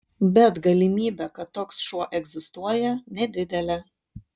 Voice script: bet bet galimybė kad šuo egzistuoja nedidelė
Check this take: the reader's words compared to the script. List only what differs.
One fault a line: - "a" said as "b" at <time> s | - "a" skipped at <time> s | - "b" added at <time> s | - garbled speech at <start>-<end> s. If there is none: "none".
- "bet" skipped at 0.6 s
- "toks" added at 1.6 s